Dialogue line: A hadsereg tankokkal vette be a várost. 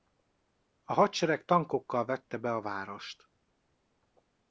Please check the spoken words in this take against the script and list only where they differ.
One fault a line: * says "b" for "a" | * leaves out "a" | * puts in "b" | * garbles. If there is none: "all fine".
all fine